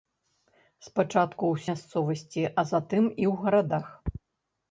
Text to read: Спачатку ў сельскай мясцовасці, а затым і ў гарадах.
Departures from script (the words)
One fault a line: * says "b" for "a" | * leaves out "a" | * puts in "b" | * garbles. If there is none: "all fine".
* leaves out "сельскай"